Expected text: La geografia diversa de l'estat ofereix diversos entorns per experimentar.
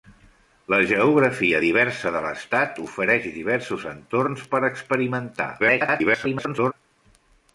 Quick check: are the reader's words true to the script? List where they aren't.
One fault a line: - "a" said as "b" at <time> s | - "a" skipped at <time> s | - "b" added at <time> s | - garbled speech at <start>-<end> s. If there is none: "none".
- garbled speech at 5.6-6.7 s